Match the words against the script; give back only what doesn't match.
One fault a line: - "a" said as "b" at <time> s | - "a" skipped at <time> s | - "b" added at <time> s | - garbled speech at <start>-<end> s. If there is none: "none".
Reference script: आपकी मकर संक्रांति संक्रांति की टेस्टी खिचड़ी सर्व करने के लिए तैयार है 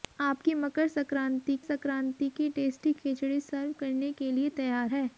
none